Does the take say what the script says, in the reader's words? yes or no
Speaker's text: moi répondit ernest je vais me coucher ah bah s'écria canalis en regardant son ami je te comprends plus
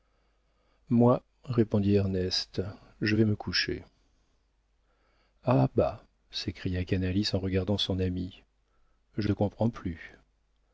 yes